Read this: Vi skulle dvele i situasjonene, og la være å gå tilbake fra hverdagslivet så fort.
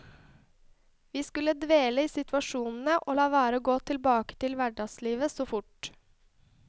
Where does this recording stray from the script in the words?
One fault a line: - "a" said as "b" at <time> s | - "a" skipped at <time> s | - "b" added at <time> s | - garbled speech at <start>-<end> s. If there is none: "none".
- "fra" said as "til" at 4.4 s